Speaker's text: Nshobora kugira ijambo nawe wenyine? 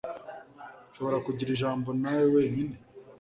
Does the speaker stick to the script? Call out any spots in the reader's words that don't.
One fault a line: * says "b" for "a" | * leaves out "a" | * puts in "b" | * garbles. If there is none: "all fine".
all fine